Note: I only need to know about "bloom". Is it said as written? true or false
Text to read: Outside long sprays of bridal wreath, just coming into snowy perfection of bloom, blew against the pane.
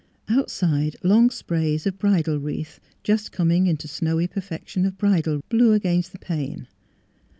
false